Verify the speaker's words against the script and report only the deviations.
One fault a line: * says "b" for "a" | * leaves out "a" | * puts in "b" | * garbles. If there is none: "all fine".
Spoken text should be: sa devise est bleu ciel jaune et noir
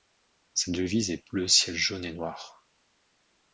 all fine